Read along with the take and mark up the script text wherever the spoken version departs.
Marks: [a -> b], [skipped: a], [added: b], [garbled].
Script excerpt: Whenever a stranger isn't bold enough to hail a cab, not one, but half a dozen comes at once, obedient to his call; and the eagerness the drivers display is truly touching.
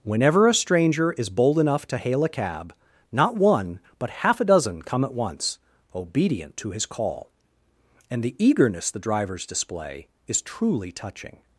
Whenever a stranger [isn't -> is] bold enough to hail a cab, not one, but half a dozen [comes -> come] at once, obedient to his call; and the eagerness the drivers display is truly touching.